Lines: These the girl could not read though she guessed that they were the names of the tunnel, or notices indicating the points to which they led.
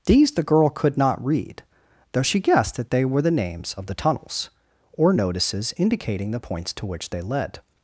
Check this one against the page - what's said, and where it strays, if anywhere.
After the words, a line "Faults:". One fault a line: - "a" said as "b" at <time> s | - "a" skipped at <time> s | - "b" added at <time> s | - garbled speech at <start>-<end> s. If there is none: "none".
These the girl could not read though she guessed that they were the names of the tunnels, or notices indicating the points to which they led.
Faults:
- "tunnel" said as "tunnels" at 4.0 s